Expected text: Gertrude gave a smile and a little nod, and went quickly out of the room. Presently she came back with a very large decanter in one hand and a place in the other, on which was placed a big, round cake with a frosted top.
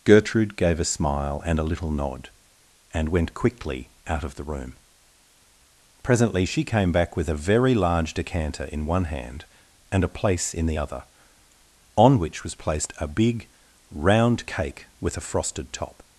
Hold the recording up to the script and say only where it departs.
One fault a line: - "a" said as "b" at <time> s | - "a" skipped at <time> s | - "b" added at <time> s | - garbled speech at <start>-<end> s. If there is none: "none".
none